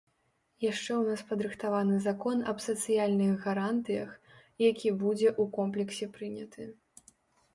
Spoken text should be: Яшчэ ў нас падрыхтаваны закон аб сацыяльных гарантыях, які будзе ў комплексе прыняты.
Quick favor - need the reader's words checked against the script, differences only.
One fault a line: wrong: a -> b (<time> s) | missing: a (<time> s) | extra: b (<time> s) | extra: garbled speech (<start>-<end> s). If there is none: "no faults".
no faults